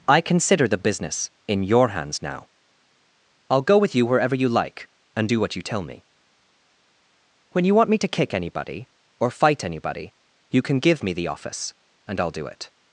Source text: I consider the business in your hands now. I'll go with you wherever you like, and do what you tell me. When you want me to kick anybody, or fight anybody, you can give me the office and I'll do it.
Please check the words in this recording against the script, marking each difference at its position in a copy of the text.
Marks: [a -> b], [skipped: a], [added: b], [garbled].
I consider the business in your hands now. I'll go with you wherever you like, and do what you tell me. When you want me to kick anybody, or fight anybody, you can give me the office and I'll do it.